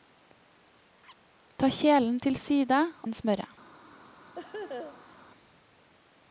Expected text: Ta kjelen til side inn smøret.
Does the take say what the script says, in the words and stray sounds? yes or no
no